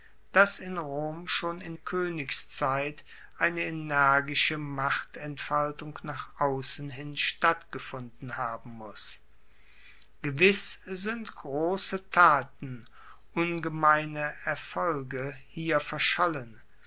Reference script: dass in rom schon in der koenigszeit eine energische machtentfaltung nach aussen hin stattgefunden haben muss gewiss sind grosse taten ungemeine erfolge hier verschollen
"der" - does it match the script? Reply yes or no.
no